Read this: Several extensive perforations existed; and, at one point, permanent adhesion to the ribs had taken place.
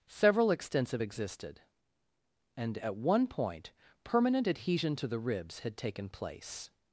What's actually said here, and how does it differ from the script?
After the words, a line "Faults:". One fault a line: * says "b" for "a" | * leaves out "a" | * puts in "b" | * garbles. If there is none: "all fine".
Several extensive existed; and, at one point, permanent adhesion to the ribs had taken place.
Faults:
* leaves out "perforations"